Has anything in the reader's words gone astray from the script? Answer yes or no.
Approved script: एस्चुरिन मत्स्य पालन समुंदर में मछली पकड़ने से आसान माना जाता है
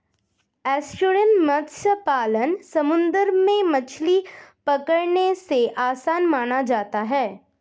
no